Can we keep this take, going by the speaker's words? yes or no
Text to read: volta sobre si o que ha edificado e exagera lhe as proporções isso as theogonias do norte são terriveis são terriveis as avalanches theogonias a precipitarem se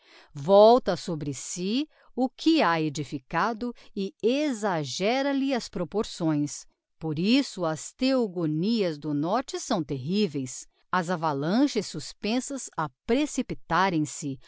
no